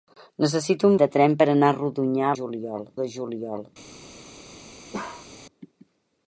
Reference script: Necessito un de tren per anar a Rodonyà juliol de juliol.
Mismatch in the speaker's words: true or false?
false